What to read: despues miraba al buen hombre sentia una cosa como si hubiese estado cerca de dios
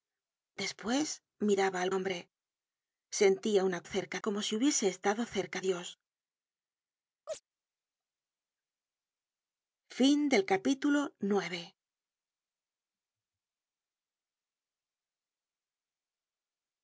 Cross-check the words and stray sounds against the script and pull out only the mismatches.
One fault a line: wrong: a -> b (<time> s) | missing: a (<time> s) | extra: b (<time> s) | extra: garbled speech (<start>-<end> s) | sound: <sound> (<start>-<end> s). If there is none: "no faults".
missing: buen (1.9 s)
wrong: cosa -> cerca (3.8 s)
missing: de (5.6 s)
sound: chirp (7.3-7.4 s)